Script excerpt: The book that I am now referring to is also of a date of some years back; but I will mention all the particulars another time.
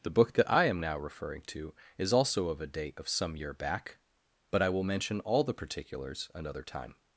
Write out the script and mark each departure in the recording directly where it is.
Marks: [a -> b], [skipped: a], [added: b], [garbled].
The book that I am now referring to is also of a date of some [years -> year] back; but I will mention all the particulars another time.